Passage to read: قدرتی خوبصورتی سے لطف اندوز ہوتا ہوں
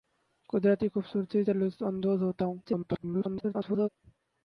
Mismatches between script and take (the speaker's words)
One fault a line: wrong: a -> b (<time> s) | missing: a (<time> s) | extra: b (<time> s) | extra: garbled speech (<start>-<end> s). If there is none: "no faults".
extra: garbled speech (2.6-3.9 s)